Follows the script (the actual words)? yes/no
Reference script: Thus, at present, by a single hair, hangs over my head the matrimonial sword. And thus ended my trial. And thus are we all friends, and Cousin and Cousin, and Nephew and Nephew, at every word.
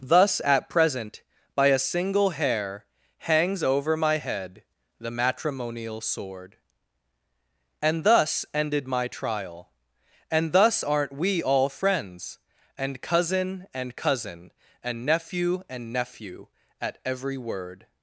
no